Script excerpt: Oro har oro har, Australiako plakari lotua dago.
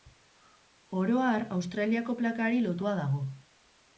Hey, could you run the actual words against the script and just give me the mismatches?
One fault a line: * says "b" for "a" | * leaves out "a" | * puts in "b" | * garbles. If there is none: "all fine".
* leaves out "oro har"